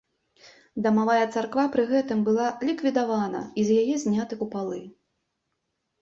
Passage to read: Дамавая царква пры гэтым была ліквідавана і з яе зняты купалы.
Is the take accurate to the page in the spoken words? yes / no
yes